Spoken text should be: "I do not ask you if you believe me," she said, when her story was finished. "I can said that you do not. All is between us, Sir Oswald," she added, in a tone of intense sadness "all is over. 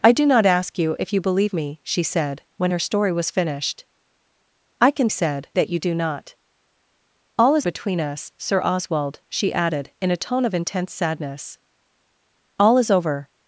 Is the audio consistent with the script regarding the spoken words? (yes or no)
yes